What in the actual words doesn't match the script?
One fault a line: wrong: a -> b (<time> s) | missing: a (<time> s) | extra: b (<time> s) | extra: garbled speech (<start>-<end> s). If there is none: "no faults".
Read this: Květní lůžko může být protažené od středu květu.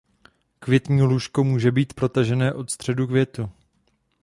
no faults